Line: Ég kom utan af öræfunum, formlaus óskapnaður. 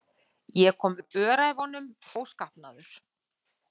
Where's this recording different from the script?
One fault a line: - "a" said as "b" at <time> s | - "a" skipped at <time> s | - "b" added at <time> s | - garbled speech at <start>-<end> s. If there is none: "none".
- "utan" skipped at 0.9 s
- "formlaus" skipped at 1.9 s